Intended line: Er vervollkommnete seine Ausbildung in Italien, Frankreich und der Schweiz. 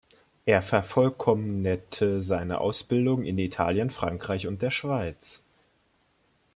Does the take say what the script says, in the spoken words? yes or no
yes